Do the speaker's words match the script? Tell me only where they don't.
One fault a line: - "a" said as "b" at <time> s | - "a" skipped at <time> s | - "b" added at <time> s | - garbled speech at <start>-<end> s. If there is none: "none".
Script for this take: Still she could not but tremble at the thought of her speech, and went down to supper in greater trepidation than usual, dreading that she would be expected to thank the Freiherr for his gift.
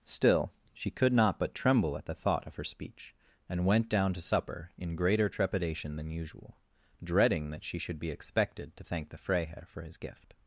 - "would" said as "should" at 7.8 s